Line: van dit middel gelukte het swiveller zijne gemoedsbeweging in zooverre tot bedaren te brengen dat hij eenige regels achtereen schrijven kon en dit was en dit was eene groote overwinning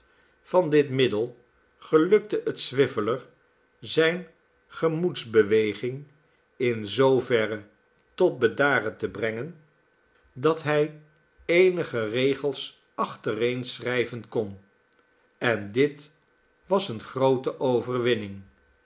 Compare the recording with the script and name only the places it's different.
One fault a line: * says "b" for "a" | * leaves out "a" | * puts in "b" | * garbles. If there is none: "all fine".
* leaves out "en dit was"